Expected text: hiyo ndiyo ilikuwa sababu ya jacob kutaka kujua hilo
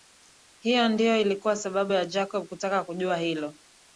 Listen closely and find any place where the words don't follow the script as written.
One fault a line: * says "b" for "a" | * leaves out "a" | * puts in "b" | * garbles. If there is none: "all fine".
all fine